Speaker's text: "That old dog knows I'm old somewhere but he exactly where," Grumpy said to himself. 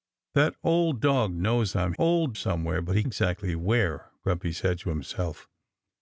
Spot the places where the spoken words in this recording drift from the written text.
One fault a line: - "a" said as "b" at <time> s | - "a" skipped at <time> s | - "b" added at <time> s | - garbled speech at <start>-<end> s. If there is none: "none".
none